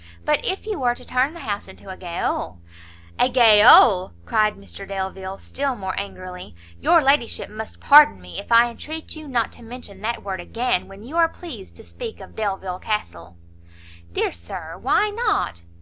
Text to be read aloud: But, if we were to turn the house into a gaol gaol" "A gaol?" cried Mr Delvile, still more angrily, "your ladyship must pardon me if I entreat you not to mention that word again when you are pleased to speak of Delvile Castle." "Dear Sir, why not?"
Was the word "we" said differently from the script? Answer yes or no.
yes